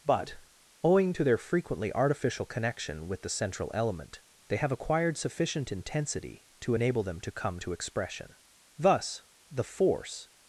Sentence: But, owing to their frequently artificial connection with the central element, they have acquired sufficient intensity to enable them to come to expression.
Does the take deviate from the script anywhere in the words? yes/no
yes